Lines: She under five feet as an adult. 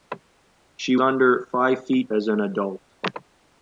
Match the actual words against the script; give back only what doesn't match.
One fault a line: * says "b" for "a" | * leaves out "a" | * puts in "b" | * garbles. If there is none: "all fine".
all fine